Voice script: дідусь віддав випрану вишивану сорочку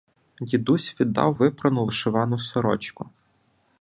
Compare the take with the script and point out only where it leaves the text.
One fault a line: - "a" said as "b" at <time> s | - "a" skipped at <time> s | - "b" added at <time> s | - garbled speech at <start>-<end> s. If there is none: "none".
none